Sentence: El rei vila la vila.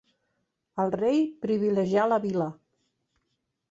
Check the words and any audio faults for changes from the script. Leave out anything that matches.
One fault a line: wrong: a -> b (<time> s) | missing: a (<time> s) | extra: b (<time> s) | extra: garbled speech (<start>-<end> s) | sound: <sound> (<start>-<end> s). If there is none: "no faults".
wrong: vila -> privilegià (1.4 s)